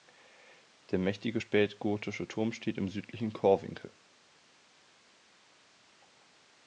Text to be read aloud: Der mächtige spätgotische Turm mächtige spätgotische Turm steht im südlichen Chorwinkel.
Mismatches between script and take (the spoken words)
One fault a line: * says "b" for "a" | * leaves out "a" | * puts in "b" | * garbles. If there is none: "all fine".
* leaves out "mächtige spätgotische Turm"